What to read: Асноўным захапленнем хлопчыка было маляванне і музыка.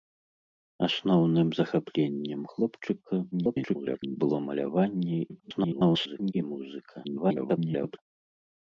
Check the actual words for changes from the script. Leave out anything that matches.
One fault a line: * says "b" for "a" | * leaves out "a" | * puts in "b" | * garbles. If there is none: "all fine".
* garbles
* garbles
* garbles